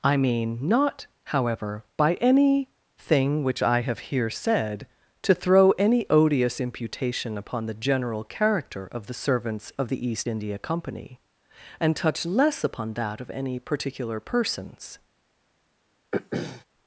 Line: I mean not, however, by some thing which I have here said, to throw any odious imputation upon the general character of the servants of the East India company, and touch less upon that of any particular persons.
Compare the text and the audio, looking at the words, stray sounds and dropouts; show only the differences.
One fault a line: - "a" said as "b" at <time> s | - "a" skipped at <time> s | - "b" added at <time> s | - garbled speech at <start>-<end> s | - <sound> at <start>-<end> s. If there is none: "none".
- "some" said as "any" at 2.1 s
- throat clearing at 16.1-16.6 s